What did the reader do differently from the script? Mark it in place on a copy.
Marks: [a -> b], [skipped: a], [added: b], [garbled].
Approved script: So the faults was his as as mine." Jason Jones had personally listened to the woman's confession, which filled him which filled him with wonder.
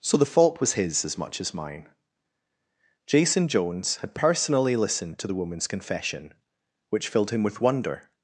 So the [faults -> fault] was his as [added: much] as mine." Jason Jones had personally listened to the woman's confession, which filled him [skipped: which filled him] with wonder.